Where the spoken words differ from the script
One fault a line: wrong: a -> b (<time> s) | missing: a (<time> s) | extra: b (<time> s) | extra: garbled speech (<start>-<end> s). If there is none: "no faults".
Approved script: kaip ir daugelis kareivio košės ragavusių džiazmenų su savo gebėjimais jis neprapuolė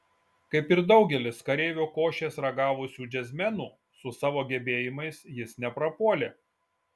no faults